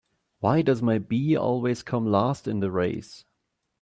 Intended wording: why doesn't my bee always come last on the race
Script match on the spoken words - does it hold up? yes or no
no